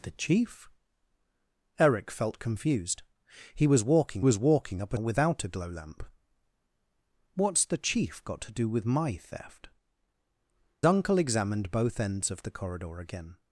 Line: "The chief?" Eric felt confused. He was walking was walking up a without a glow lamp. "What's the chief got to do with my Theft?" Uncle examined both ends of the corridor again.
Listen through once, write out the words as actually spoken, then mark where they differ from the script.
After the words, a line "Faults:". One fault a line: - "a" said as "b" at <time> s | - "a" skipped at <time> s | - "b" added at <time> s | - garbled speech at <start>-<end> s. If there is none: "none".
"The chief?" Eric felt confused. He was walking was walking up a without a glow lamp. "What's the chief got to do with my Theft?" Uncle examined both ends of the corridor again.
Faults:
none